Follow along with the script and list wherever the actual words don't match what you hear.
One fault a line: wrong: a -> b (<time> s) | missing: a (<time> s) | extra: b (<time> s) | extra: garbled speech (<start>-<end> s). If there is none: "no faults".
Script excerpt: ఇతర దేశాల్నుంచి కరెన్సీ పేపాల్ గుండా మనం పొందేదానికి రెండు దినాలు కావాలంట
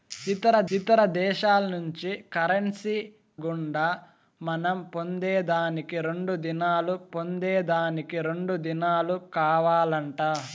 extra: ఇతర (0.8 s)
missing: పేపాల్ (3.0 s)
extra: పొందేదానికి రెండు దినాలు (7.1 s)